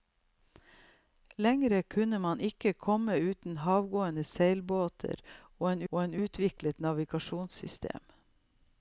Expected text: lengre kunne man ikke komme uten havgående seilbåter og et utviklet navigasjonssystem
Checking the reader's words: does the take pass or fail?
fail